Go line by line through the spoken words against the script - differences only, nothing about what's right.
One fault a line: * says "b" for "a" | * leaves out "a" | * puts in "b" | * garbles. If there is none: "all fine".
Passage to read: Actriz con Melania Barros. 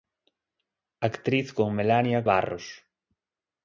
all fine